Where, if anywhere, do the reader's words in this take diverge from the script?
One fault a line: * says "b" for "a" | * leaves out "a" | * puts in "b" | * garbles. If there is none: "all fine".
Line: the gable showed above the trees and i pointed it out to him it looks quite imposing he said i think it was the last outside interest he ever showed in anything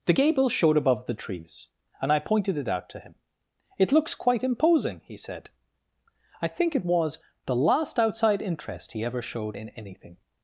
all fine